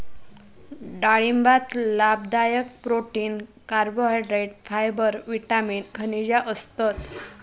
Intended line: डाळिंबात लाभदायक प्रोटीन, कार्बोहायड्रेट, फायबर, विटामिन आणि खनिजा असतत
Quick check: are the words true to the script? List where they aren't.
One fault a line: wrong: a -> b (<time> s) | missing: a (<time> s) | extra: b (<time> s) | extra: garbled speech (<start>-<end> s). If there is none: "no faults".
missing: आणि (5.8 s)